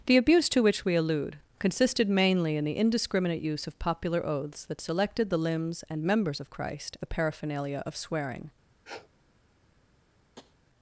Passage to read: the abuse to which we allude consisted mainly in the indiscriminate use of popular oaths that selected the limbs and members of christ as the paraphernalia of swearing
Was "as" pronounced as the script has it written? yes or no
no